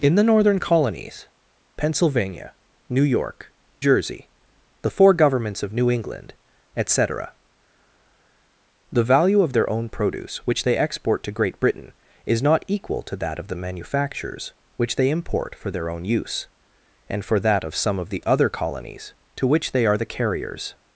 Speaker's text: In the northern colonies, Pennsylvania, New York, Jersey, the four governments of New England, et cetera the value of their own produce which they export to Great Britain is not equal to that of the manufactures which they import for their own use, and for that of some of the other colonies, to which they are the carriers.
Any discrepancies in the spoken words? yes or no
no